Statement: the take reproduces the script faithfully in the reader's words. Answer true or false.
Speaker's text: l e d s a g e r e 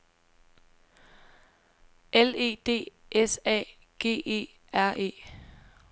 true